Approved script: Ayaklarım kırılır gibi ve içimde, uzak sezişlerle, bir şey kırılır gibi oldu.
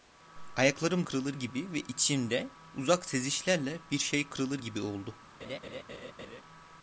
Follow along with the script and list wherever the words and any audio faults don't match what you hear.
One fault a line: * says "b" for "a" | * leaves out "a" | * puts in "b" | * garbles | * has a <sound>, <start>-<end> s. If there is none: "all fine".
* has a laugh, 5.4-6.4 s